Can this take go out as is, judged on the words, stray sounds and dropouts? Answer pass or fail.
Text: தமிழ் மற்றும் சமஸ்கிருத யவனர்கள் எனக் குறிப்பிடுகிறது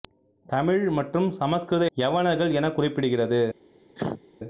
fail